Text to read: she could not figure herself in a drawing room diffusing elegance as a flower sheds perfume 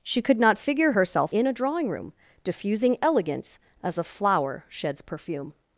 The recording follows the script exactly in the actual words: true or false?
true